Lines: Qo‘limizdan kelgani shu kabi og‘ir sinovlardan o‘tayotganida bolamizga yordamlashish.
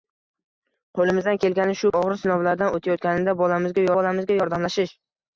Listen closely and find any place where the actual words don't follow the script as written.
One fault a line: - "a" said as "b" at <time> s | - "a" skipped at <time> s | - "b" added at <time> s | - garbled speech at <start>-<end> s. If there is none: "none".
- "kabi" skipped at 1.9 s
- "bolamizga" added at 4.0 s